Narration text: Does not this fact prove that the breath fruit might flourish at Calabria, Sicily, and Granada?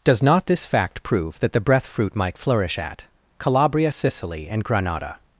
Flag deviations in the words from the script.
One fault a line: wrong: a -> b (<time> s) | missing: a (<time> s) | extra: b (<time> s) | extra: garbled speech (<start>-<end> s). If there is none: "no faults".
no faults